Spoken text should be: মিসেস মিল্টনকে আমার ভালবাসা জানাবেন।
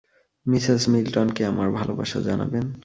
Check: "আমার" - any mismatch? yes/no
no